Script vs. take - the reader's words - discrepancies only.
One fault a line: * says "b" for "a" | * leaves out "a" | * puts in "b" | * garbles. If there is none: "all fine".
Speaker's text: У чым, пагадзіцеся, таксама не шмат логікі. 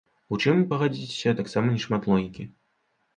all fine